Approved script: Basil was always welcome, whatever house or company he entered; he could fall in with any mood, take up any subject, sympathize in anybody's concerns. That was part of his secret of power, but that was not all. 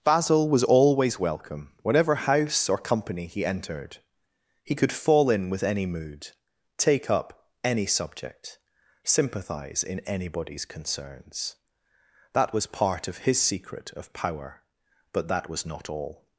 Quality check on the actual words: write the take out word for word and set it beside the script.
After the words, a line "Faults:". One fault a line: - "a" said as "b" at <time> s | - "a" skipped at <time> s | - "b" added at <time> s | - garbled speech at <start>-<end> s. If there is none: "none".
Basil was always welcome, whatever house or company he entered; he could fall in with any mood, take up any subject, sympathize in anybody's concerns. That was part of his secret of power, but that was not all.
Faults:
none